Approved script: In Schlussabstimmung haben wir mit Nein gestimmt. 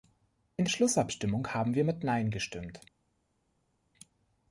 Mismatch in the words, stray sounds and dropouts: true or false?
false